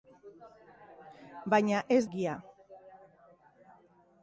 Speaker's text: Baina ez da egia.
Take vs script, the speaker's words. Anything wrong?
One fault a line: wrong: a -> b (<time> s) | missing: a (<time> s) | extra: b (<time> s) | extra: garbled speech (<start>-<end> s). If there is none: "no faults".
missing: da (2.0 s)